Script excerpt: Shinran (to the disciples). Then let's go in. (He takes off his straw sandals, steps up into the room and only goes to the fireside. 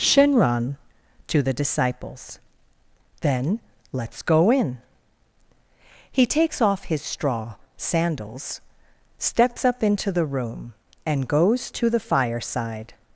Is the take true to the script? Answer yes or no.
no